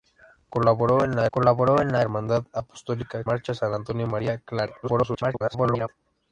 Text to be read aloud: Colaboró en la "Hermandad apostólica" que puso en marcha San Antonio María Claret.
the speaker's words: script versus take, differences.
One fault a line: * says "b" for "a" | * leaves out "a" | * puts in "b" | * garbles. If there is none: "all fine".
* says "colaboró en la Hermandad apostólica" for "Hermandad apostólica que puso en"
* garbles